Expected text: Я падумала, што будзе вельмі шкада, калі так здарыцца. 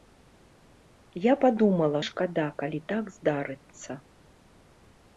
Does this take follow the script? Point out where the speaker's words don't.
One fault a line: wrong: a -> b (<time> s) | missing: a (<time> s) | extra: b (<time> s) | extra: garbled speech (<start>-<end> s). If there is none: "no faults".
missing: што будзе вельмі (2.0 s)